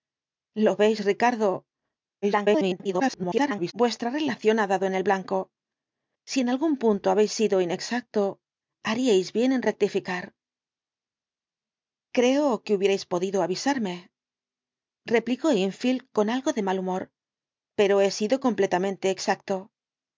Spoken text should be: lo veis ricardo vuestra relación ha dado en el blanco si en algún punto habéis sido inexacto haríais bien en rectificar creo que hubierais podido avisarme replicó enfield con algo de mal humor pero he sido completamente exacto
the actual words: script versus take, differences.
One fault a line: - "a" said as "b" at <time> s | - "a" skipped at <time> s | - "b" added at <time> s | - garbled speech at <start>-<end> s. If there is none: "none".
- garbled speech at 2.2-3.7 s